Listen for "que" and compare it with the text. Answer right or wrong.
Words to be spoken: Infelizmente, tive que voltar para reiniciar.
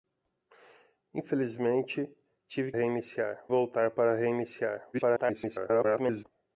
wrong